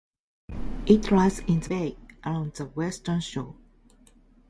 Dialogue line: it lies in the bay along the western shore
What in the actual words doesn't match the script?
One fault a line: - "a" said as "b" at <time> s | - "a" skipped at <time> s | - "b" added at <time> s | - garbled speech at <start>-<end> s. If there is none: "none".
none